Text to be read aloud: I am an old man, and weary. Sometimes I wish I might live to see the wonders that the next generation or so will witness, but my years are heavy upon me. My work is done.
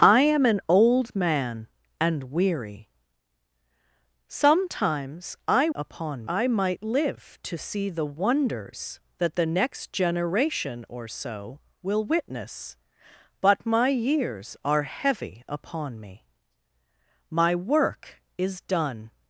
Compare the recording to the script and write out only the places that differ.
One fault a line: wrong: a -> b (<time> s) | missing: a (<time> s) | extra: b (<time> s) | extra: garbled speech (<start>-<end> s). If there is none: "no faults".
wrong: wish -> upon (5.8 s)